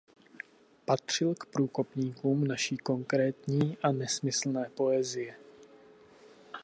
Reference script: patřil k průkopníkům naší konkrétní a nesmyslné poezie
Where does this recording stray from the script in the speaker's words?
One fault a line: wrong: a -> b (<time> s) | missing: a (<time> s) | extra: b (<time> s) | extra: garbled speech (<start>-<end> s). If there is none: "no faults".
no faults